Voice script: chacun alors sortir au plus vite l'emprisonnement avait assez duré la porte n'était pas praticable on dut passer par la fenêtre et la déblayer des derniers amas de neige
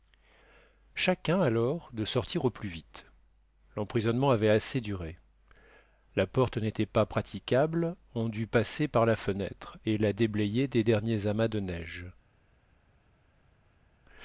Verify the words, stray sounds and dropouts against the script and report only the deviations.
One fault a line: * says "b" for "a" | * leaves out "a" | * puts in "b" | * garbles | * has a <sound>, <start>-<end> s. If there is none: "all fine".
* puts in "de"